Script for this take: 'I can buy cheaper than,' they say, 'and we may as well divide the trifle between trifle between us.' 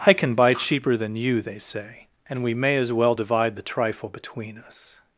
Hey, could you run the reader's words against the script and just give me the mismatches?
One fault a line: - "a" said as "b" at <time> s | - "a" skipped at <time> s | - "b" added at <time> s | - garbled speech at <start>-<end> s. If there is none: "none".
- "you" added at 1.1 s
- "trifle between" skipped at 4.6 s